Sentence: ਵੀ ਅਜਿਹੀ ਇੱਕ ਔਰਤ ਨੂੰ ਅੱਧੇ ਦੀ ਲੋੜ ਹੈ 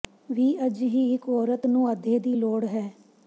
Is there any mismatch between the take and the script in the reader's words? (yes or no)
no